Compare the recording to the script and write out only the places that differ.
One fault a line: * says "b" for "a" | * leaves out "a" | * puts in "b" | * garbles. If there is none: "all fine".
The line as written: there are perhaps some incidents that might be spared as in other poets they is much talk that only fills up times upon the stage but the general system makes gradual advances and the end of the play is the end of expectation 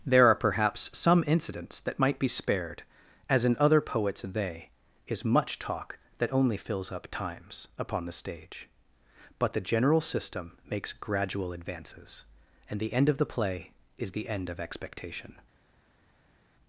all fine